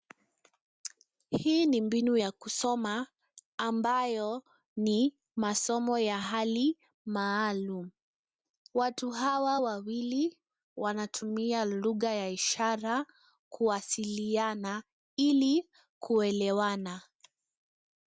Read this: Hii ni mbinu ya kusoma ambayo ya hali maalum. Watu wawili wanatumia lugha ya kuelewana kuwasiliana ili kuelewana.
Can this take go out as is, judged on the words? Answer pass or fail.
fail